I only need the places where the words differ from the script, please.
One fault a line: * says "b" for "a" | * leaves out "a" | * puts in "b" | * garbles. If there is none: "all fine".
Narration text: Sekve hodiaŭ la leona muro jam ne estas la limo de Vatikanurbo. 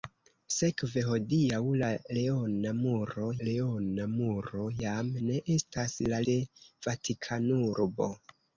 * puts in "leona muro"
* leaves out "limo"